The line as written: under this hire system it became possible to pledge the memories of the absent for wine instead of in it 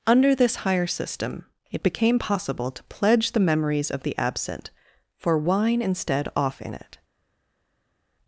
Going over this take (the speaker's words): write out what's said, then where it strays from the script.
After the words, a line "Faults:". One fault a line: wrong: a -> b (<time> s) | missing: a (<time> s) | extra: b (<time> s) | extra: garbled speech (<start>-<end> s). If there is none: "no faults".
under this hire system it became possible to pledge the memories of the absent for wine instead off in it
Faults:
wrong: of -> off (6.3 s)